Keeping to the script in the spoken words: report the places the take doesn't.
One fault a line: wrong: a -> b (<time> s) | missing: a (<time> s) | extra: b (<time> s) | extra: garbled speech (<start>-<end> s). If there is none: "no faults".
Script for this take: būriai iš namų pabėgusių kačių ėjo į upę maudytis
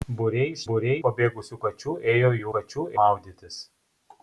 wrong: namų -> būriai (0.7 s)
wrong: upę -> kačių (2.5 s)